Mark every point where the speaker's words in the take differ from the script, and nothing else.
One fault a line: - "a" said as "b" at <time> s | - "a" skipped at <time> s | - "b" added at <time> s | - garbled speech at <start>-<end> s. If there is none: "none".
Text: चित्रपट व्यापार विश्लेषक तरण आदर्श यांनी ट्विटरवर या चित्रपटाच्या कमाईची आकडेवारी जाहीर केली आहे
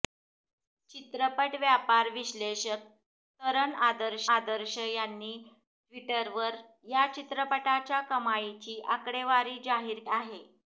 - "आदर्श" added at 4.4 s
- "केली" skipped at 10.0 s